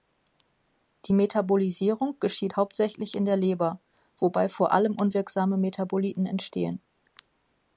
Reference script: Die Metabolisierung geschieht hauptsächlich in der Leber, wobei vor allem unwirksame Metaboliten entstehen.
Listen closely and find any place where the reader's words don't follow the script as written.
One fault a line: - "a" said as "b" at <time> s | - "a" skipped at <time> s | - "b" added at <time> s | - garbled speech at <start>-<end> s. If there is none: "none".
none